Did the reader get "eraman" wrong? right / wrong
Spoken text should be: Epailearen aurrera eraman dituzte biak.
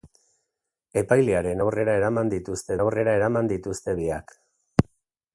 right